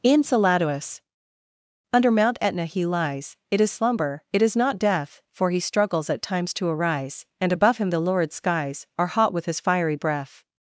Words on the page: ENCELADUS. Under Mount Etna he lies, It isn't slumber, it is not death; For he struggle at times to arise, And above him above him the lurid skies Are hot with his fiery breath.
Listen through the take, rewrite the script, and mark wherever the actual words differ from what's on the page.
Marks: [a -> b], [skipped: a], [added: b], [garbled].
ENCELADUS. Under Mount Etna he lies, It [isn't -> is] slumber, it is not death; For he [struggle -> struggles] at times to arise, And above him [skipped: above him] the lurid skies Are hot with his fiery breath.